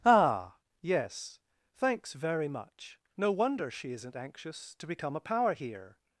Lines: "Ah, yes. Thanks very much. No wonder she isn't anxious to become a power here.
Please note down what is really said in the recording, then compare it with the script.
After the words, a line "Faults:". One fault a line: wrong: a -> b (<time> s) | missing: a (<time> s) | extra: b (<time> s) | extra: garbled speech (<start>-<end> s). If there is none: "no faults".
"Ah, yes. Thanks very much. No wonder she isn't anxious to become a power here.
Faults:
no faults